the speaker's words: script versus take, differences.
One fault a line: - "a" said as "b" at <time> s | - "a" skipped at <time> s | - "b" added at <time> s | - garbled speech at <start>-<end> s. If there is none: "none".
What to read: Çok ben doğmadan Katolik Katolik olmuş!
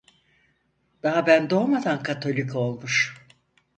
- "Çok" said as "Daha" at 1.0 s
- "Katolik" skipped at 2.5 s